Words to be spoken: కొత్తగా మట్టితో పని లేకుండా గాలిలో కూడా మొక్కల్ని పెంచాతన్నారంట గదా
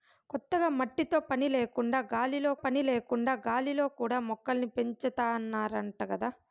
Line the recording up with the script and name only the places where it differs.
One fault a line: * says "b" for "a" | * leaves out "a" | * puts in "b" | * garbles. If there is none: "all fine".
* puts in "పని లేకుండా గాలిలో"